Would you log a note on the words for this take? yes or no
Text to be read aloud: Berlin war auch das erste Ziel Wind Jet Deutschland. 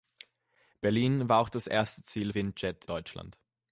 no